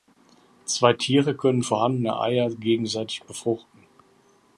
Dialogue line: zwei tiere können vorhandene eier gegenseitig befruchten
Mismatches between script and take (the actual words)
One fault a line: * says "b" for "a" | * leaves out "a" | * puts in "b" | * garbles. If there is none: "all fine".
all fine